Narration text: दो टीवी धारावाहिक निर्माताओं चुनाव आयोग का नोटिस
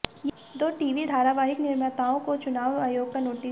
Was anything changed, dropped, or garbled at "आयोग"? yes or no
no